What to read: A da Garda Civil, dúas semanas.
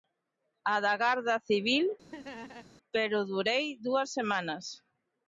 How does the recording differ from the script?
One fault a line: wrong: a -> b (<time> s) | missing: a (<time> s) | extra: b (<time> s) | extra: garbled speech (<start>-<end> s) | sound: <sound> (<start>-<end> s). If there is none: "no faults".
sound: laugh (2.1-2.7 s)
extra: pero durei (2.9 s)